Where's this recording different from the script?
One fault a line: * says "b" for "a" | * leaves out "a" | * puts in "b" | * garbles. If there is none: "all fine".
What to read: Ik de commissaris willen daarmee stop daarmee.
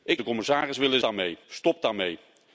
all fine